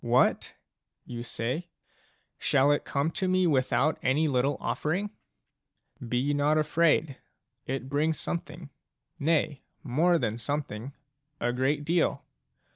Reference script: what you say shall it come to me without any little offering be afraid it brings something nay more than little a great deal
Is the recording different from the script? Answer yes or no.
yes